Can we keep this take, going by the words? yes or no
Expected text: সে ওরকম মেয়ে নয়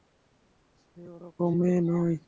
yes